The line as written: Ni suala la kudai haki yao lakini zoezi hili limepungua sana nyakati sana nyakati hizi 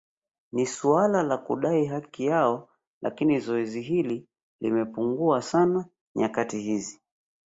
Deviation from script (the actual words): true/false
true